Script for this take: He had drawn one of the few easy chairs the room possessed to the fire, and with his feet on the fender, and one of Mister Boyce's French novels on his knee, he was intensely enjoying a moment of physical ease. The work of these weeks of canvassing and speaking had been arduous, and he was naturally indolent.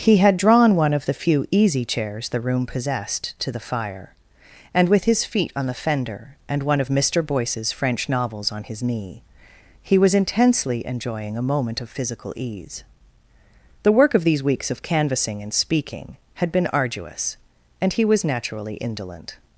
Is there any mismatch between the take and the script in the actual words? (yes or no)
no